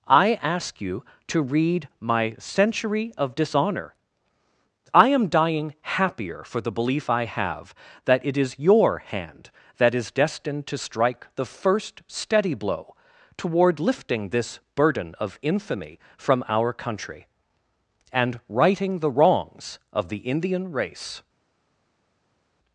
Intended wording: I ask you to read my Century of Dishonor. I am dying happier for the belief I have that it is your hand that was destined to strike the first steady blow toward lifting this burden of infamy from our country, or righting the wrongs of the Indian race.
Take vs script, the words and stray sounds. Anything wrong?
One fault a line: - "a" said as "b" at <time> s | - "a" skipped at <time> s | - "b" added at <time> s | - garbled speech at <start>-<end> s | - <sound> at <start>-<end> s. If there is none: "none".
- "was" said as "is" at 9.9 s
- "or" said as "and" at 18.1 s